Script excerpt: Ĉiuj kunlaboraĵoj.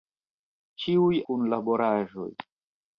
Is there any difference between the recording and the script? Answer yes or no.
no